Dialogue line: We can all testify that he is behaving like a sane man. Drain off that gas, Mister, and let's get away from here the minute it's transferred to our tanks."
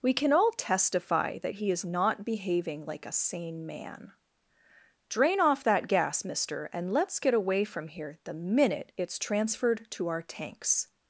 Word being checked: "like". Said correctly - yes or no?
yes